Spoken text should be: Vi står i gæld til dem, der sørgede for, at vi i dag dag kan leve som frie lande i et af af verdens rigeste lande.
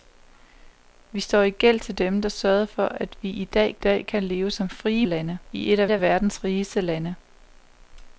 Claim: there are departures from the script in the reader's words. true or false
false